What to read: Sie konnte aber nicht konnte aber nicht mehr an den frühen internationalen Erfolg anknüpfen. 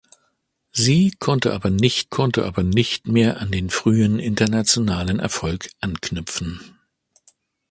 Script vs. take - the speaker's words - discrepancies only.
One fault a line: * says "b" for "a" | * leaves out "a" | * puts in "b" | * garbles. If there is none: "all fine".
all fine